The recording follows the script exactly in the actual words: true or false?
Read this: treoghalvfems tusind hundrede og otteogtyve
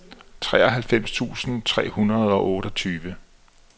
false